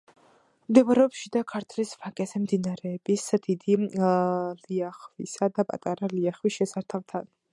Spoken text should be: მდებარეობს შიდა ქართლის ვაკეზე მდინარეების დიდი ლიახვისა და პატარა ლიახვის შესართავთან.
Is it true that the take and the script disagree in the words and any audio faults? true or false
false